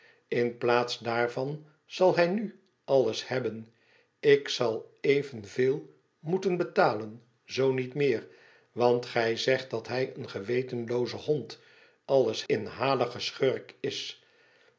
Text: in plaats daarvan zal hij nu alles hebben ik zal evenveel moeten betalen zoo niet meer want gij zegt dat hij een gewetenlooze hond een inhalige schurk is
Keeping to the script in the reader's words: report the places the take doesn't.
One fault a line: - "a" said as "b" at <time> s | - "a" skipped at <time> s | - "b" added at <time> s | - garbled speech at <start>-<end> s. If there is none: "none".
- "een" said as "alles" at 12.1 s